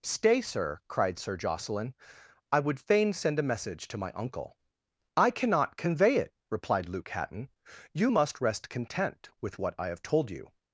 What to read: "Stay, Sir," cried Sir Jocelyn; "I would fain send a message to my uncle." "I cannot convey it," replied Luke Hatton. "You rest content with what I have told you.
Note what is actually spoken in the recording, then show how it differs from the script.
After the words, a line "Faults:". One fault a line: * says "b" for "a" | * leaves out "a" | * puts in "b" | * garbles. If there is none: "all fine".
"Stay, Sir," cried Sir Jocelyn; "I would fain send a message to my uncle." "I cannot convey it," replied Luke Hatton. "You must rest content with what I have told you.
Faults:
* puts in "must"